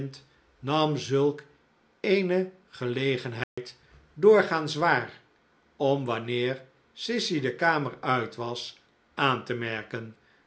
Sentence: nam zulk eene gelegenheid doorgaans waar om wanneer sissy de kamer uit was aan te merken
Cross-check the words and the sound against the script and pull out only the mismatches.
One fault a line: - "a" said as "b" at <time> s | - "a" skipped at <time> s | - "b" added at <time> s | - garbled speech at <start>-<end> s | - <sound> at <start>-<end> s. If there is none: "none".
- dropout at 3.4-3.6 s